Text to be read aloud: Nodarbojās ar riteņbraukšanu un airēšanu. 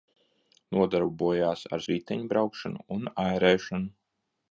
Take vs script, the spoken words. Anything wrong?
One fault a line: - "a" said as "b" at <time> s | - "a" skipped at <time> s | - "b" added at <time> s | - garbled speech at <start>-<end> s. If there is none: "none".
none